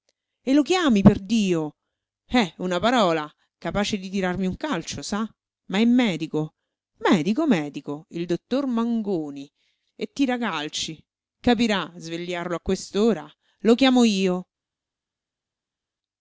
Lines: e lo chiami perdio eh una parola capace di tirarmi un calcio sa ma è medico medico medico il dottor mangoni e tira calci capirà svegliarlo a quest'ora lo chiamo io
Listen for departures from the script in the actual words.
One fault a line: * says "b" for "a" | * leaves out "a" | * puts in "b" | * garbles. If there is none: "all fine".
all fine